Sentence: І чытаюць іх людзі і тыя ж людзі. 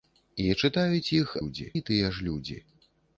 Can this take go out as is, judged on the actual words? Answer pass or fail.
pass